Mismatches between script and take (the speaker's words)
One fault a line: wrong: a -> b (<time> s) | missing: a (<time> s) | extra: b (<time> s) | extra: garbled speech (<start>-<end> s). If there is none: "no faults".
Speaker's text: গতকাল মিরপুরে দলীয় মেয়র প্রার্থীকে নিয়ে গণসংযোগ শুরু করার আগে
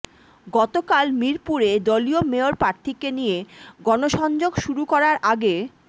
no faults